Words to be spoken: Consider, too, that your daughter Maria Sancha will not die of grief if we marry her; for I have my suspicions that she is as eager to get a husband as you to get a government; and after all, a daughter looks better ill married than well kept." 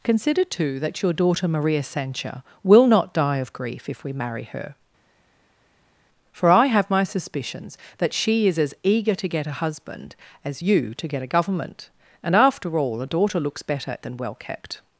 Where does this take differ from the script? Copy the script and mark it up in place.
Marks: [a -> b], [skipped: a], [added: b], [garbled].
Consider, too, that your daughter Maria Sancha will not die of grief if we marry her; for I have my suspicions that she is as eager to get a husband as you to get a government; and after all, a daughter looks better [skipped: ill married] than well kept."